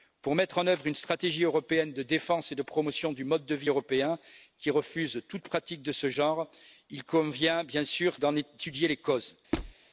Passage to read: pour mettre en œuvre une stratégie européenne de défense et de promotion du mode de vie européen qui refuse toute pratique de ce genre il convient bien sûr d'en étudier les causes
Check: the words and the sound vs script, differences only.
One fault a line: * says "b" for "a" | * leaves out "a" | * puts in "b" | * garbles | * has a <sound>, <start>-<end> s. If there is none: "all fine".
* has a squeak, 9.5-9.7 s